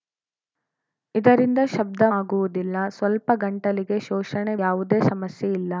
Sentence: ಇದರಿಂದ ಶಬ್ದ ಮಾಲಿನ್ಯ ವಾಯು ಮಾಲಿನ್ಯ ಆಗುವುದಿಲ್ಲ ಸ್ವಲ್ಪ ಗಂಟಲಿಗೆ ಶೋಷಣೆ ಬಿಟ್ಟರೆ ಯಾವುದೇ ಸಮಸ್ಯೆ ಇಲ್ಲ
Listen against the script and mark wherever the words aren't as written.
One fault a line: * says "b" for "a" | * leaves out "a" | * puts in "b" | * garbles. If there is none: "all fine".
* leaves out "ಮಾಲಿನ್ಯ ವಾಯು ಮಾಲಿನ್ಯ"
* leaves out "ಬಿಟ್ಟರೆ"